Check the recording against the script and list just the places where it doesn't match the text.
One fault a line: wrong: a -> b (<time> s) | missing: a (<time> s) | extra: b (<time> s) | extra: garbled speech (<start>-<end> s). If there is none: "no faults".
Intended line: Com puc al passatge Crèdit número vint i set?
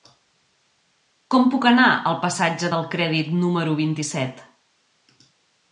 extra: anar (1.7 s)
extra: del (2.7 s)